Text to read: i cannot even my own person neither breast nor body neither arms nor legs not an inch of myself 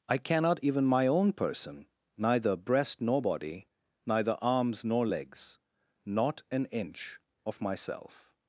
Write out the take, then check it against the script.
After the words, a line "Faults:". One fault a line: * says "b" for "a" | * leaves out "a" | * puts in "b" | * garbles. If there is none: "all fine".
i cannot even my own person neither breast nor body neither arms nor legs not an inch of myself
Faults:
all fine